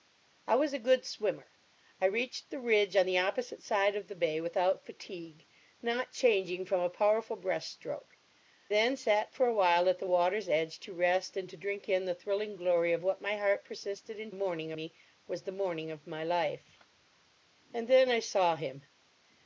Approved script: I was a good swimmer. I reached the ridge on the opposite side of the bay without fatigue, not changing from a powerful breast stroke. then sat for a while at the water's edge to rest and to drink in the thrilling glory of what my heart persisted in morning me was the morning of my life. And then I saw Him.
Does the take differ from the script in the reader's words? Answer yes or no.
no